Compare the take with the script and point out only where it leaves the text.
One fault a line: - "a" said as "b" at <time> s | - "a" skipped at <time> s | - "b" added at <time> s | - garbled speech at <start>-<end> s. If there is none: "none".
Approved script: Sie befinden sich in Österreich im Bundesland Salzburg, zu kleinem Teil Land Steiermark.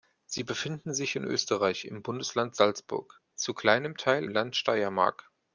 none